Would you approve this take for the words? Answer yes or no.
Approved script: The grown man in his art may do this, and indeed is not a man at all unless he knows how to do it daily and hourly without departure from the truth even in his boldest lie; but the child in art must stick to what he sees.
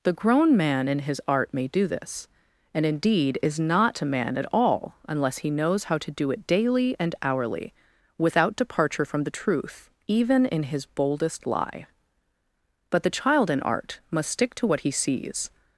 yes